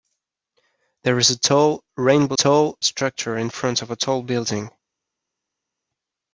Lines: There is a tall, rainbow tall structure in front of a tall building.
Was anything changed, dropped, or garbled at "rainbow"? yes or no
no